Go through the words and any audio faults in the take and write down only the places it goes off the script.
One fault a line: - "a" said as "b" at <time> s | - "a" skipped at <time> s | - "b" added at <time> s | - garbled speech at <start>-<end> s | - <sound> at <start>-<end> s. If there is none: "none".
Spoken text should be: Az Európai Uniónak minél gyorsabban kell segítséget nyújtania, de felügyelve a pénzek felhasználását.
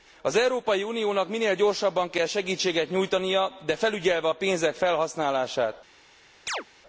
- chirp at 6.5-6.6 s